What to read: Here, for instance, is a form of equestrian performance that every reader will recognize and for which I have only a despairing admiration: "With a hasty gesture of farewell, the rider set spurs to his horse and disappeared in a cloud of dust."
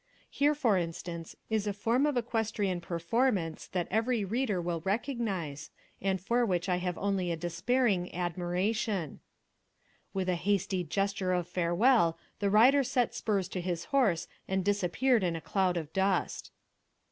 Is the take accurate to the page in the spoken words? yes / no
yes